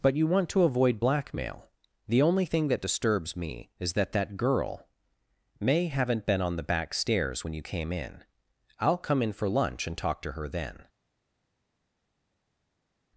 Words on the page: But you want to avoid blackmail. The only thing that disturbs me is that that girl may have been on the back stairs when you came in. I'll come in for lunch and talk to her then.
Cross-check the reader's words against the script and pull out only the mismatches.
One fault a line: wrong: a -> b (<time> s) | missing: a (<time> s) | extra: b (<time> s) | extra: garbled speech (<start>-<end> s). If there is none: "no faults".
wrong: have -> haven't (5.9 s)